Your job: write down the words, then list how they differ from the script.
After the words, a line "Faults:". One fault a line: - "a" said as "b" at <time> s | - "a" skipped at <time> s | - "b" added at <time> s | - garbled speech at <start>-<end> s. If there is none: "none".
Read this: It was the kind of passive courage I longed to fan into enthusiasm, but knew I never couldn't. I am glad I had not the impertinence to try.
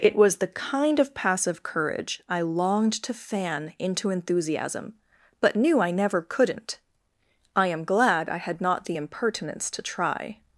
It was the kind of passive courage I longed to fan into enthusiasm, but knew I never couldn't. I am glad I had not the impertinence to try.
Faults:
none